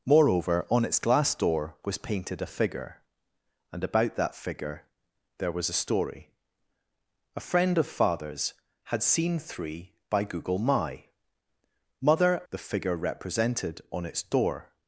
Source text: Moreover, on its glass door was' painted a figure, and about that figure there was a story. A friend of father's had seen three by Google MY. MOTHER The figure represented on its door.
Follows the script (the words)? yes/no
yes